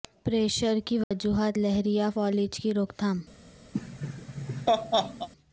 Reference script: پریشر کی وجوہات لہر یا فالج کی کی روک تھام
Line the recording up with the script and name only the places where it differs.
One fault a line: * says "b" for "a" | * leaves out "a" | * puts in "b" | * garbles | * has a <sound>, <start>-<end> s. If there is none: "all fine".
* has a dropout, 1.0-1.1 s
* leaves out "کی"
* has a laugh, 3.7-5.3 s